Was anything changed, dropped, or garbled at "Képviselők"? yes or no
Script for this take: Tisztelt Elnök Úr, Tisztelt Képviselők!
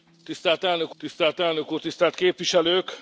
no